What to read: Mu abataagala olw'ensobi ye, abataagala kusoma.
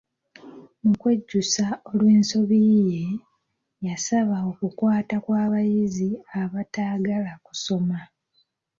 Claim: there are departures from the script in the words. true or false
true